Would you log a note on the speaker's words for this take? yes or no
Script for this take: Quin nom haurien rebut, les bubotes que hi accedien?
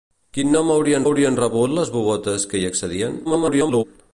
yes